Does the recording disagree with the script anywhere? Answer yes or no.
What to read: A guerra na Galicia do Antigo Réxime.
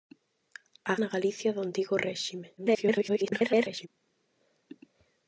yes